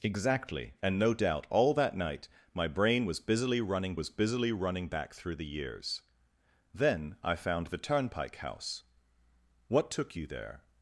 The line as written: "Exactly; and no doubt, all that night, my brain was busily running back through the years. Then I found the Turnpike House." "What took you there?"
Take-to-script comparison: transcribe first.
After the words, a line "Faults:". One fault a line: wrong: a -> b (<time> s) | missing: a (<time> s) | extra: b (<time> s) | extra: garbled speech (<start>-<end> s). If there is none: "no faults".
"Exactly; and no doubt, all that night, my brain was busily running was busily running back through the years. Then I found the Turnpike House." "What took you there?"
Faults:
extra: was busily running (3.9 s)